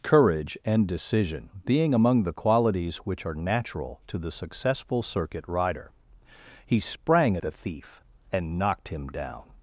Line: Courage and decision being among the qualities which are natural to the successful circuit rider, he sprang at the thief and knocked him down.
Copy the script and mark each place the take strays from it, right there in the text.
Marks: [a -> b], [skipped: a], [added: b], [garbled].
Courage and decision being among the qualities which are natural to the successful circuit rider, he sprang [skipped: at] the thief and knocked him down.